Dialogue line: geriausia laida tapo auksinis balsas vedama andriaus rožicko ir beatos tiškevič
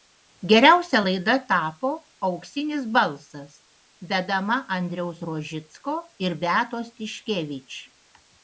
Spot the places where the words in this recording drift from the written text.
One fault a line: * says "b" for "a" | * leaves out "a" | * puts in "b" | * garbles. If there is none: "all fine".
all fine